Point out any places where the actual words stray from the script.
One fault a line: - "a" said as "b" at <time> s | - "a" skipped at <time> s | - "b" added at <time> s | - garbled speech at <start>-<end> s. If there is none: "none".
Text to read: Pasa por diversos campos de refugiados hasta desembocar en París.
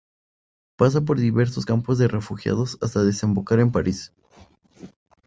none